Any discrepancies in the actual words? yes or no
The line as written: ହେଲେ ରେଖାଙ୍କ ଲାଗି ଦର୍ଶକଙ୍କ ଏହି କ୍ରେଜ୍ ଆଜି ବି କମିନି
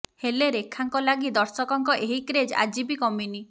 no